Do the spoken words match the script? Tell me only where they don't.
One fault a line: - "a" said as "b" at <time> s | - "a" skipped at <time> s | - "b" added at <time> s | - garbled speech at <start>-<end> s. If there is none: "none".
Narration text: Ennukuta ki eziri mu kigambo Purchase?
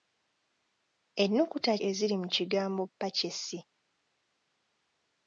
- "ki" skipped at 1.7 s